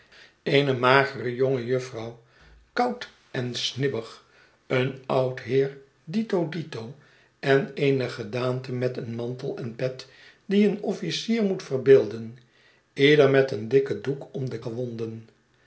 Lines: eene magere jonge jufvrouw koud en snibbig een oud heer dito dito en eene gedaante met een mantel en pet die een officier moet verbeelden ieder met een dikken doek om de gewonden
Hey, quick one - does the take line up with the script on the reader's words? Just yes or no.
yes